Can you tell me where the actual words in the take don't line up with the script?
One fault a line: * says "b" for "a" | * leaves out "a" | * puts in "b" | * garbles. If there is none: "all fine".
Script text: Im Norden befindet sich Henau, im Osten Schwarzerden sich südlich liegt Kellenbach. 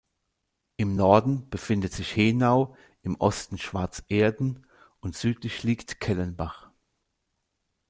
* says "und" for "sich"